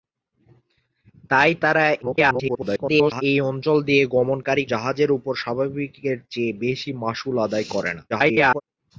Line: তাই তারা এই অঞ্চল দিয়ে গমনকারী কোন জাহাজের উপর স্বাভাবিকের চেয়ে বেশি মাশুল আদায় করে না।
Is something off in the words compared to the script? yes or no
yes